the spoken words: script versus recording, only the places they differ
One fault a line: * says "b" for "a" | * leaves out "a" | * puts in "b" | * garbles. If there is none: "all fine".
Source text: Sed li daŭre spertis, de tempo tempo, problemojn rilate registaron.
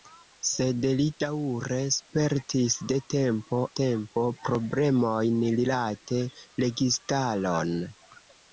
all fine